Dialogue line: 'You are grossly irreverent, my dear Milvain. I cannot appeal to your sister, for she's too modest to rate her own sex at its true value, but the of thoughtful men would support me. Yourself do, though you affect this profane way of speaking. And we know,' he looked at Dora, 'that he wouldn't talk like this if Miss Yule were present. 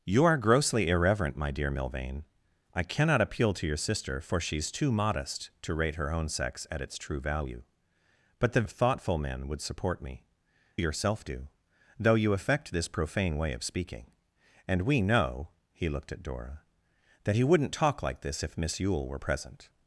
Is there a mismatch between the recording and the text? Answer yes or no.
no